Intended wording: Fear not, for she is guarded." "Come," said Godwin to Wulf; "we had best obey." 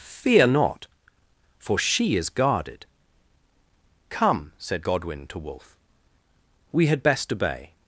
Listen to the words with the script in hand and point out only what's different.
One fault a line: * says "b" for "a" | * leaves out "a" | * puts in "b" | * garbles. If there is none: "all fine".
all fine